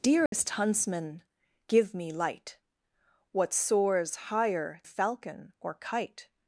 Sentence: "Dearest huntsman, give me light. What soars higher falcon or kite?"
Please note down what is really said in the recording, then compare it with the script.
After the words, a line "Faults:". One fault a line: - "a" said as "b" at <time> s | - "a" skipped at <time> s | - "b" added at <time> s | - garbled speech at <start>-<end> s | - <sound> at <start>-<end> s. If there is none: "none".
"Dearest huntsman, give me light. What soars higher falcon or kite?"
Faults:
- dropout at 0.3-0.3 s